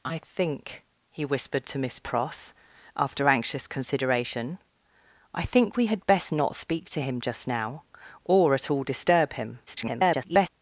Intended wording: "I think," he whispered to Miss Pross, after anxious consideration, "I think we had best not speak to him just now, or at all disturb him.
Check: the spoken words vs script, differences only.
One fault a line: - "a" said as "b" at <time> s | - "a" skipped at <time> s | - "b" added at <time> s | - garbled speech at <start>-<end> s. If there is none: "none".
- garbled speech at 9.7-10.5 s